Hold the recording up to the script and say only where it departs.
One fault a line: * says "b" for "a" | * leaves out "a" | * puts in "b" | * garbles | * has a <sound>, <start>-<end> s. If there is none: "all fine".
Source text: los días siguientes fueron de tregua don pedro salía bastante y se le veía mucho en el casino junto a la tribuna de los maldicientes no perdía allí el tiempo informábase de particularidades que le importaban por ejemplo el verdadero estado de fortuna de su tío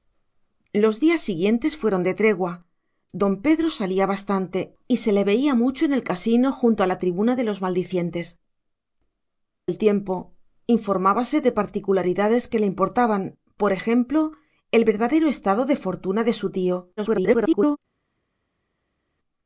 * leaves out "no perdía allí"
* garbles